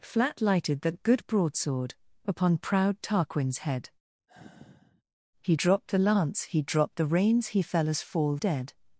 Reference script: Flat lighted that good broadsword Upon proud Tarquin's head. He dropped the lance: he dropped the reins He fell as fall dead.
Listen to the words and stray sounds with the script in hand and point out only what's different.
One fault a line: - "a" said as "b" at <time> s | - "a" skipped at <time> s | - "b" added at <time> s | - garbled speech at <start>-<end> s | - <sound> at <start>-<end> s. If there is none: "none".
- sigh at 4.3-5.0 s